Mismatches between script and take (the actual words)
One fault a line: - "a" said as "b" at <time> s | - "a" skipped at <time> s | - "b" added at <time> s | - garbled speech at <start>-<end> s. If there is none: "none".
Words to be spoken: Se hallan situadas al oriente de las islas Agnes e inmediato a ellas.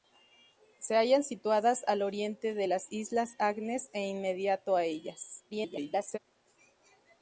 - garbled speech at 5.5-6.2 s